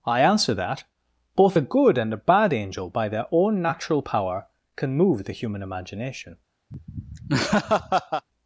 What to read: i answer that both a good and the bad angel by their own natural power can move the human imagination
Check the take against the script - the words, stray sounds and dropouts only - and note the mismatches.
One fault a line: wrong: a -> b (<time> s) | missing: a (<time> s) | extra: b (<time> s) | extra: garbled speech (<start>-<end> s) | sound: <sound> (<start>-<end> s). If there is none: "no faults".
wrong: the -> a (2.1 s)
sound: laugh (6.7-8.3 s)